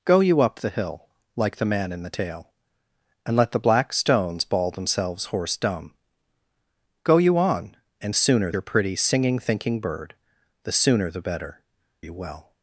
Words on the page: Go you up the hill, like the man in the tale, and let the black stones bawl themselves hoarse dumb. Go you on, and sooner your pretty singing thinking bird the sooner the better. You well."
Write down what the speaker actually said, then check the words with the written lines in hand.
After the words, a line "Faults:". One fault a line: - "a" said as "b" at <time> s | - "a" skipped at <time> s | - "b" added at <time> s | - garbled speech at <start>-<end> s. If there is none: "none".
Go you up the hill, like the man in the tale, and let the black stones bawl themselves hoarse dumb. Go you on, and sooner your pretty singing thinking bird the sooner the better. You well."
Faults:
none